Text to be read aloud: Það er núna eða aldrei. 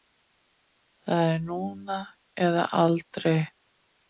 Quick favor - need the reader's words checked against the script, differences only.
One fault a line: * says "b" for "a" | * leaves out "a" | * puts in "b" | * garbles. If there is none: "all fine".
all fine